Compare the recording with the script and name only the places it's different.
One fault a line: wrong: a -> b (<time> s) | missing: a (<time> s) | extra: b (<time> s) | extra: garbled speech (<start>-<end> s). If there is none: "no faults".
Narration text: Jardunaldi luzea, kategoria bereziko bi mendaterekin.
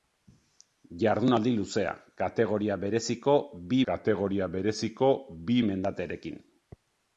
extra: kategoria bereziko bi (3.9 s)